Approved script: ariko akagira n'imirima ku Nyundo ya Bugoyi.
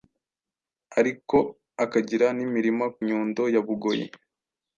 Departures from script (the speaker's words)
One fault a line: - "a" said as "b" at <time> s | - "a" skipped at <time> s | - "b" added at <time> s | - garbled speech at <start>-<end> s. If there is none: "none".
- "ku" skipped at 2.9 s